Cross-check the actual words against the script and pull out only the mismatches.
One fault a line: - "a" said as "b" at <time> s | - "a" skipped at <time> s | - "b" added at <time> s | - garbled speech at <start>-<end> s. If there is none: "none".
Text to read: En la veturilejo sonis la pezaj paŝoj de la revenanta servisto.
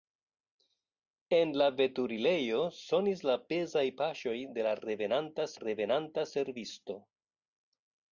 - "revenanta" added at 5.6 s